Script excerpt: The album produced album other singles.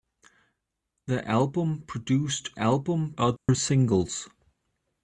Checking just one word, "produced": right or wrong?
right